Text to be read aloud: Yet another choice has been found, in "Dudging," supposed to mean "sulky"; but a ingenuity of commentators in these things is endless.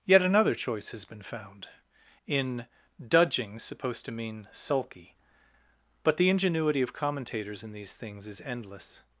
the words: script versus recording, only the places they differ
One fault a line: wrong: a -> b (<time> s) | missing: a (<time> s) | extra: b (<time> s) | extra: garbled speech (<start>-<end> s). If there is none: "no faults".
wrong: a -> the (6.2 s)